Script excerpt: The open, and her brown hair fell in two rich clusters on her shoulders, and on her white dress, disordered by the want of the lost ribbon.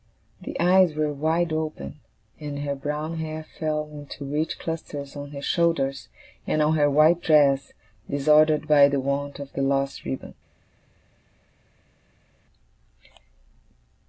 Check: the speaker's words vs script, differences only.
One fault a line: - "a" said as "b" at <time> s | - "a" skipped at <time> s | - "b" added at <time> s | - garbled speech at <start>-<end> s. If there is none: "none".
- "eyes were wide" added at 0.6 s